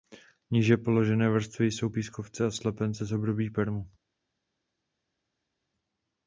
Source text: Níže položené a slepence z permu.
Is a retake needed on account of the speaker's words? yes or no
yes